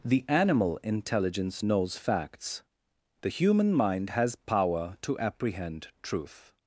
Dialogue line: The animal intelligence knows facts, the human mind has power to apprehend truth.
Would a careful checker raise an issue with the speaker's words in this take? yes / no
no